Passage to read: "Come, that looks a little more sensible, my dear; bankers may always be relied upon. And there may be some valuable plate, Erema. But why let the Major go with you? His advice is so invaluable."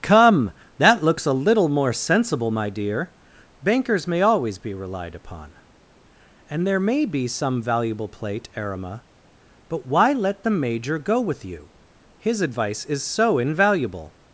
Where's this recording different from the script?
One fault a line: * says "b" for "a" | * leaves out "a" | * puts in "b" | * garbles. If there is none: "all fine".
all fine